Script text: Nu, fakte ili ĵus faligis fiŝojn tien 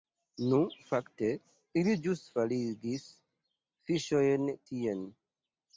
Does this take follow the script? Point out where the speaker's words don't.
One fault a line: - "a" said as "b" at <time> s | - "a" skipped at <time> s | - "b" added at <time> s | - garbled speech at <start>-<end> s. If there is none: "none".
none